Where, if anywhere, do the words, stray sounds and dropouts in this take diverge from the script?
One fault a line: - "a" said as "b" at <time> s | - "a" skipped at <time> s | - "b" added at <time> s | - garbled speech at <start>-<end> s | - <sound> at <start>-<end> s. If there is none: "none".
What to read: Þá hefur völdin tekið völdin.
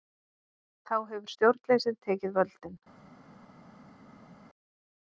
- "völdin" said as "stjórnleysið" at 1.3 s